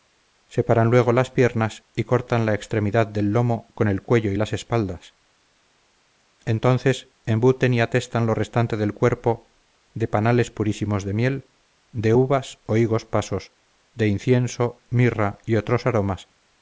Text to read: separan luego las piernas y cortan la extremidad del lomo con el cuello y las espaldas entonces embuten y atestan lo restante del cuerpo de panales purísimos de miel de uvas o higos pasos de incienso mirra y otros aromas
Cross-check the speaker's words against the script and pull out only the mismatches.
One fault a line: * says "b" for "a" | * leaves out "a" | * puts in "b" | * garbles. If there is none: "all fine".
all fine